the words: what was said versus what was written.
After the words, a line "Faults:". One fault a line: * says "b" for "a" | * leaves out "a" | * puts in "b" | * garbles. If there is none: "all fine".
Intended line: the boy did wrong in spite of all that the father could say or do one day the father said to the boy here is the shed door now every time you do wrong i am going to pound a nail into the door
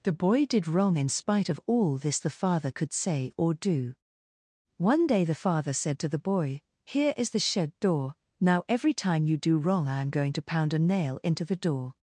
the boy did wrong in spite of all this the father could say or do one day the father said to the boy here is the shed door now every time you do wrong i am going to pound a nail into the door
Faults:
* says "this" for "that"